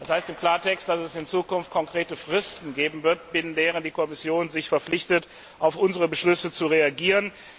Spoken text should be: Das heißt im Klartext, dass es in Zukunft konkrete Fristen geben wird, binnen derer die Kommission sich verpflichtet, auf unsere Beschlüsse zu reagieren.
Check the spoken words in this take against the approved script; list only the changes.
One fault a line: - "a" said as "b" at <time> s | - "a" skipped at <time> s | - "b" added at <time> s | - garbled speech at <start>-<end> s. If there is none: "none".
none